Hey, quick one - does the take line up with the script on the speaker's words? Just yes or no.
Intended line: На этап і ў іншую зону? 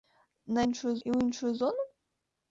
no